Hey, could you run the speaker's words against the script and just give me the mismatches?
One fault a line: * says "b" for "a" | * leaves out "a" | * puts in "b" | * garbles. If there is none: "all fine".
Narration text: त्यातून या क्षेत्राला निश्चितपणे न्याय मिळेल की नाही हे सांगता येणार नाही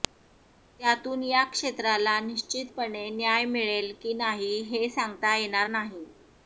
all fine